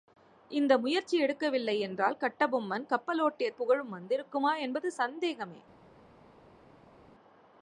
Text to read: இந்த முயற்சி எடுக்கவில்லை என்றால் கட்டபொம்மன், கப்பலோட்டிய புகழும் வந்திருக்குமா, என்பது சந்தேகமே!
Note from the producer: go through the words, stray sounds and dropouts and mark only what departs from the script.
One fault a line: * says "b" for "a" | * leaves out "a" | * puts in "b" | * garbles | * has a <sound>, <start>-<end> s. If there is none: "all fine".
all fine